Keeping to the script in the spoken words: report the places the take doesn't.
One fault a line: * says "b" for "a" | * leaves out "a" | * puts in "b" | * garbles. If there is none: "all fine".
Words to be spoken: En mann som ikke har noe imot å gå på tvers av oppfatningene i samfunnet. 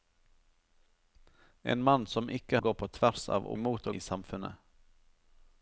* leaves out "har noe imot"
* says "imot" for "oppfatningene"